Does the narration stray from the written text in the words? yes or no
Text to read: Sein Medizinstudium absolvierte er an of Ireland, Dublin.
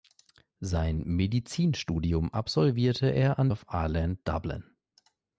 no